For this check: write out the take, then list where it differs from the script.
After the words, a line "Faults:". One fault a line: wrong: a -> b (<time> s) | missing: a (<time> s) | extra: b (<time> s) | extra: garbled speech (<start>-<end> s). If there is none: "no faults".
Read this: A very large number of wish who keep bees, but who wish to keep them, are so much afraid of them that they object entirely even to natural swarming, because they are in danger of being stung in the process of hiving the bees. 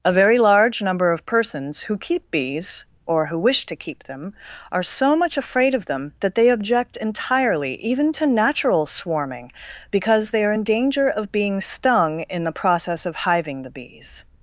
A very large number of persons who keep bees, or who wish to keep them, are so much afraid of them that they object entirely even to natural swarming, because they are in danger of being stung in the process of hiving the bees.
Faults:
wrong: wish -> persons (1.3 s)
wrong: but -> or (3.0 s)